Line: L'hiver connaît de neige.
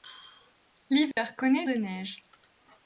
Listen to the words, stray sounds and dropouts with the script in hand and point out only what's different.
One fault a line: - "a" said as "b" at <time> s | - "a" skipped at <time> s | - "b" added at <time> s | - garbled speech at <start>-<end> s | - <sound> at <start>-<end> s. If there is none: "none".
- dropout at 1.1-1.2 s